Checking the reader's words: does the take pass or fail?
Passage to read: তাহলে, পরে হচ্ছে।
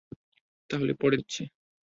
pass